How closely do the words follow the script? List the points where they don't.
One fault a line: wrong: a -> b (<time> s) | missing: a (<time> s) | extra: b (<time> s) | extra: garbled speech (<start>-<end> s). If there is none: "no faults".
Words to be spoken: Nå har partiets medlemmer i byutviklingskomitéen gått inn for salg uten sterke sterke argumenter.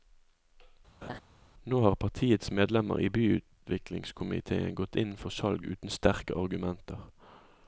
missing: sterke (6.4 s)